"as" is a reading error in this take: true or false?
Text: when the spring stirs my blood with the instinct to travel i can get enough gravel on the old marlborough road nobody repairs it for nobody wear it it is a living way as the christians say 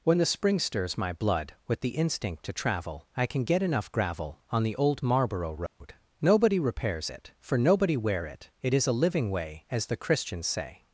false